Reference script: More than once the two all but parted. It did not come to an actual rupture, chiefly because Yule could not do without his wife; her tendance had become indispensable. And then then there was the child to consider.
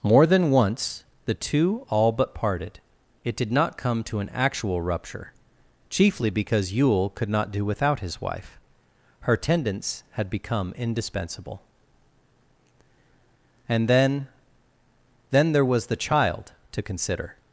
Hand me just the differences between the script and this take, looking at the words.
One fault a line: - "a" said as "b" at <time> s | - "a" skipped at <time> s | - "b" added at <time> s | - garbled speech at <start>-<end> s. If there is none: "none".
none